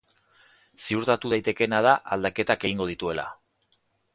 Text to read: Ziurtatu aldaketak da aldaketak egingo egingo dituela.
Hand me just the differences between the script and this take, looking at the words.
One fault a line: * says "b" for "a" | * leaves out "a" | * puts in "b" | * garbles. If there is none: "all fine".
* says "daitekeena" for "aldaketak"
* leaves out "egingo"